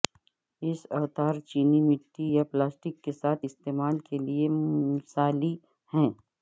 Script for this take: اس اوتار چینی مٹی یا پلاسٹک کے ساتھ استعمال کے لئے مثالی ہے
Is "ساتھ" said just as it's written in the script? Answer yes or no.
yes